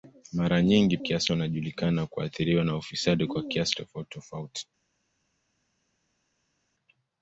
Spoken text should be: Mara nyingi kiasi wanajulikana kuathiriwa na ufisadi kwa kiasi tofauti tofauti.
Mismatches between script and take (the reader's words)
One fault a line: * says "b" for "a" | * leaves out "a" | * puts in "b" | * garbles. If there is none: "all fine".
all fine